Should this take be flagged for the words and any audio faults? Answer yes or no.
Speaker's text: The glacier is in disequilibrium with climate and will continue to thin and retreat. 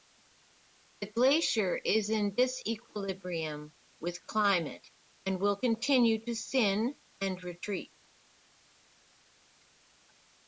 no